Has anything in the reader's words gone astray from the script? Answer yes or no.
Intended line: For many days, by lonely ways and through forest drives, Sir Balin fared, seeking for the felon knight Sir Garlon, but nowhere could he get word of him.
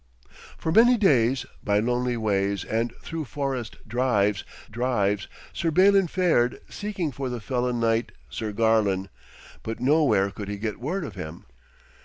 yes